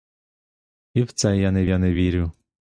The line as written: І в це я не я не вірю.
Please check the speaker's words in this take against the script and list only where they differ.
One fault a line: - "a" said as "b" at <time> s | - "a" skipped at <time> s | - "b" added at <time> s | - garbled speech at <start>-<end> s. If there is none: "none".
none